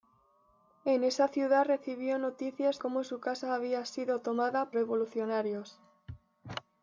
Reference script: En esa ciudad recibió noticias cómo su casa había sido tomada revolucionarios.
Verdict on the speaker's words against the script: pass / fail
pass